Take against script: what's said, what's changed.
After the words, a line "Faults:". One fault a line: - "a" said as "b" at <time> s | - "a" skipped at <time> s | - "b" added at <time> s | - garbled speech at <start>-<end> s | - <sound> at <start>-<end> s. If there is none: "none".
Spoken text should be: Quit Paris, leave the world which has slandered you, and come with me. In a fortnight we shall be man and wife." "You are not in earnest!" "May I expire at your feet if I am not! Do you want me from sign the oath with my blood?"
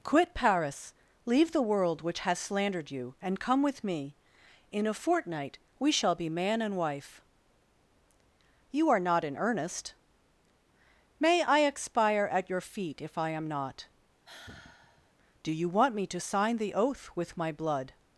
Quit Paris, leave the world which has slandered you, and come with me. In a fortnight we shall be man and wife." "You are not in earnest!" "May I expire at your feet if I am not! Do you want me to sign the oath with my blood?"
Faults:
- sigh at 14.2-15.1 s
- "from" said as "to" at 16.1 s